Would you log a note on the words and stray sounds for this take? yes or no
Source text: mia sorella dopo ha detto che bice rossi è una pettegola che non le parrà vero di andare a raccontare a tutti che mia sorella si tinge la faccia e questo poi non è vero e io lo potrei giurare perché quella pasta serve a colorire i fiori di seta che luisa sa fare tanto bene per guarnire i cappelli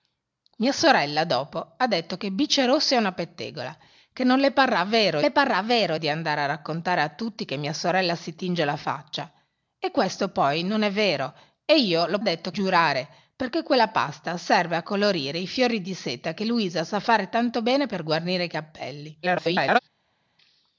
yes